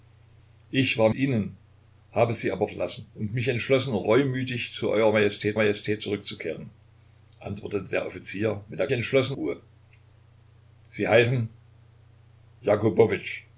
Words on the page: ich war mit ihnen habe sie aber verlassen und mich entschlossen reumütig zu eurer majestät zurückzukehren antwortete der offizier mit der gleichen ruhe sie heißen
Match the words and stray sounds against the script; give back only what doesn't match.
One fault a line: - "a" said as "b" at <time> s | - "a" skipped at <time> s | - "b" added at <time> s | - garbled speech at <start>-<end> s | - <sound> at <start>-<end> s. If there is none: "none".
- "mit" skipped at 1.1 s
- "majestät" added at 5.6 s
- "gleichen" said as "entschlossen" at 8.9 s